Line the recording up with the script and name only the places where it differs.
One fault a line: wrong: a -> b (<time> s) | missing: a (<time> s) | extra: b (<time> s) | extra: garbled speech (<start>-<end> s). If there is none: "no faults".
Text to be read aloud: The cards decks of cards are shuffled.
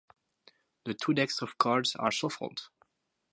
wrong: cards -> two (0.9 s)